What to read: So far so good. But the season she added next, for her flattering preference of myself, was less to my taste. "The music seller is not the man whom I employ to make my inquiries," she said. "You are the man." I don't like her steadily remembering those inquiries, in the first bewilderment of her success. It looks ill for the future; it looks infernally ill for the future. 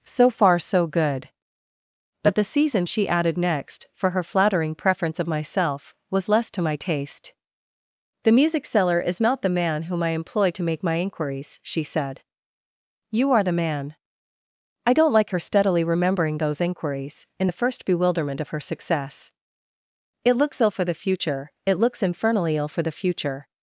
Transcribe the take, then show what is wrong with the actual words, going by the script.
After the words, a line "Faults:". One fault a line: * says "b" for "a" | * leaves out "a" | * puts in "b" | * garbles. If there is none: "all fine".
So far so good. But the season she added next, for her flattering preference of myself, was less to my taste. "The music seller is not the man whom I employ to make my inquiries," she said. "You are the man." I don't like her steadily remembering those inquiries, in the first bewilderment of her success. It looks ill for the future; it looks infernally ill for the future.
Faults:
all fine